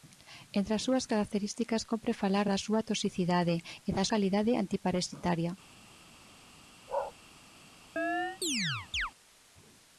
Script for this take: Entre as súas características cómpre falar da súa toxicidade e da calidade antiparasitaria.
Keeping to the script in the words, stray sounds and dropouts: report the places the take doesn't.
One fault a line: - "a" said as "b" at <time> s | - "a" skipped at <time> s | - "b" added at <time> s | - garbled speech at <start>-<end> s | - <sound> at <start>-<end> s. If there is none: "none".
- bark at 6.9-7.1 s
- chirp at 8.0-9.1 s